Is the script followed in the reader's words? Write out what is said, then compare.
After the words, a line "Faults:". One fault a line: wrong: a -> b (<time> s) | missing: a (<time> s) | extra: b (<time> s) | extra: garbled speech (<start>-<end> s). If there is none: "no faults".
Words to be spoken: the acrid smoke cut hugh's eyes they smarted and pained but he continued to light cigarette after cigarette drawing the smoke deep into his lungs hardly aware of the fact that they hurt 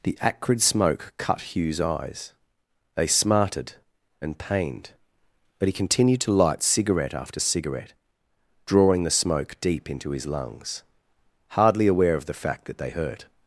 the acrid smoke cut hugh's eyes they smarted and pained but he continued to light cigarette after cigarette drawing the smoke deep into his lungs hardly aware of the fact that they hurt
Faults:
no faults